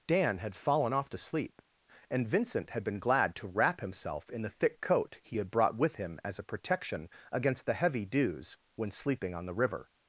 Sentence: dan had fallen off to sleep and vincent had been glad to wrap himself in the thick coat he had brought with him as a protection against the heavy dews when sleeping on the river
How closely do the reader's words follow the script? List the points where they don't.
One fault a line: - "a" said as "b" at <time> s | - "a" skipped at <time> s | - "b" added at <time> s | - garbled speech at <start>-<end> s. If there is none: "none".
none